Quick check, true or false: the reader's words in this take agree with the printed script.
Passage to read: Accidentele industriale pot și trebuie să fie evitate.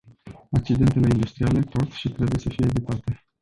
true